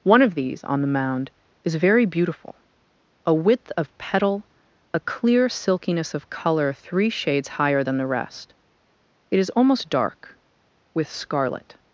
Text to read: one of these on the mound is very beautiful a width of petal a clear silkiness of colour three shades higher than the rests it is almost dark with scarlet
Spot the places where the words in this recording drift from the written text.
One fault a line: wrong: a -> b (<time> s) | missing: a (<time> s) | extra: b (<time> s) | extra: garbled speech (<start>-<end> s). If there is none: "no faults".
wrong: rests -> rest (8.1 s)